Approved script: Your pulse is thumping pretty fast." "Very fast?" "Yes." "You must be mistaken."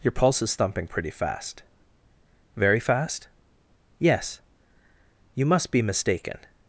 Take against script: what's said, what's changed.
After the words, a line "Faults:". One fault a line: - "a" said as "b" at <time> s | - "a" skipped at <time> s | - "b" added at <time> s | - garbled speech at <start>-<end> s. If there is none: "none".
Your pulse is thumping pretty fast." "Very fast?" "Yes." "You must be mistaken."
Faults:
none